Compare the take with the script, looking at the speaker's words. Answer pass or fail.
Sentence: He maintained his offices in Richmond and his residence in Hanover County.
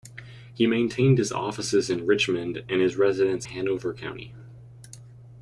fail